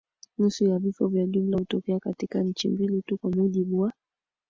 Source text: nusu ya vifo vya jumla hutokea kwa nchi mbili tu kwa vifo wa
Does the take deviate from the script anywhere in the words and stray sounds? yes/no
yes